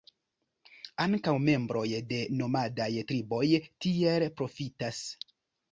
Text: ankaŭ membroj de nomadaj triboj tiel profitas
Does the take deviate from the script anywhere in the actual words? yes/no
no